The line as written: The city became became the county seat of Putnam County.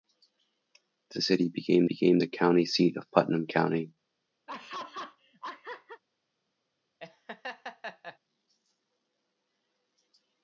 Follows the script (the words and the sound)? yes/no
no